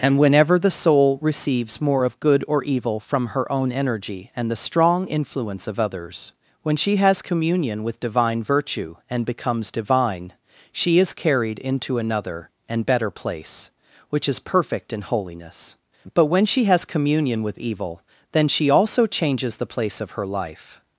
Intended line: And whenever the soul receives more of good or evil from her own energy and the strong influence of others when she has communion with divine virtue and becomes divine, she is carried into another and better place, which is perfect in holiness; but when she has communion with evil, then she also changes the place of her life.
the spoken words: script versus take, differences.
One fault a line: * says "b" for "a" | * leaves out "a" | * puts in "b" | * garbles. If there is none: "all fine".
all fine